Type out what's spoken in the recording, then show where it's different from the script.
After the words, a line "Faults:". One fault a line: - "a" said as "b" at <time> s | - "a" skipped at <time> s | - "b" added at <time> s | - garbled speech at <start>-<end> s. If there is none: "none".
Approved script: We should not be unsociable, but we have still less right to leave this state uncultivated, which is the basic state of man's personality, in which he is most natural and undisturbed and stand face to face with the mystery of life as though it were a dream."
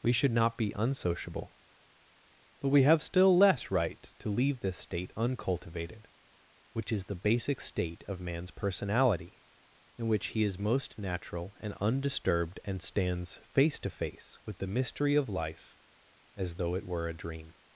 We should not be unsociable, but we have still less right to leave this state uncultivated, which is the basic state of man's personality, in which he is most natural and undisturbed and stands face to face with the mystery of life as though it were a dream."
Faults:
- "stand" said as "stands" at 12.8 s